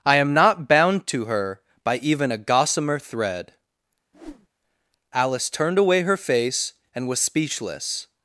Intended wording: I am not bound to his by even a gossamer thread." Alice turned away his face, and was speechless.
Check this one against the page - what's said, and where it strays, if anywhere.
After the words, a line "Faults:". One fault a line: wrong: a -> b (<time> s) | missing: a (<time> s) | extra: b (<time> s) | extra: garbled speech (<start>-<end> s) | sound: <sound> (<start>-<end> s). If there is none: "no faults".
I am not bound to her by even a gossamer thread." Alice turned away her face, and was speechless.
Faults:
wrong: his -> her (1.2 s)
sound: whoosh (4.1-4.5 s)
wrong: his -> her (6.0 s)